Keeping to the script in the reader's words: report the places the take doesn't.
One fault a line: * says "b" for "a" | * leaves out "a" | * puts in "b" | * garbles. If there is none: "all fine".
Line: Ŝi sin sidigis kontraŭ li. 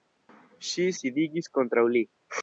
* leaves out "sin"